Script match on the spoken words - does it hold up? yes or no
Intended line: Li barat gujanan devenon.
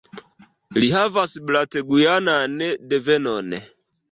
no